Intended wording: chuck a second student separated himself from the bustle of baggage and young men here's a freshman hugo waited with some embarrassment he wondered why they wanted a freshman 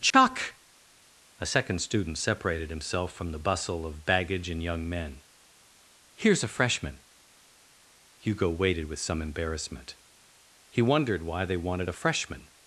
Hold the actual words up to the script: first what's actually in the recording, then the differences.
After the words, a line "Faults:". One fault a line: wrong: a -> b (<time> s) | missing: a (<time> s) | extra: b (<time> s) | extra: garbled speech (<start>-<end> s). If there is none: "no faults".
chuck a second student separated himself from the bustle of baggage and young men here's a freshman hugo waited with some embarrassment he wondered why they wanted a freshman
Faults:
no faults